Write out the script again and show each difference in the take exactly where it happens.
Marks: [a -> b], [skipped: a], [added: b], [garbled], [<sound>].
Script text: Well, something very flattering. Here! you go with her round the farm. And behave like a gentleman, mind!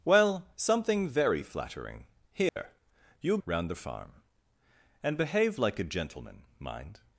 Well, something very flattering. Here! [dropout] you [skipped: go with her] round the farm. And behave like a gentleman, mind!